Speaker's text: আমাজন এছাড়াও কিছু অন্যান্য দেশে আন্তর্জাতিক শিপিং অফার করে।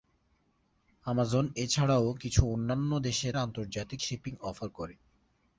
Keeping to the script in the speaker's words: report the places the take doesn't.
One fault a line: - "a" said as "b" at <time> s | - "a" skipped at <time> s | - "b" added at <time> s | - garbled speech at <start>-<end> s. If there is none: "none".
none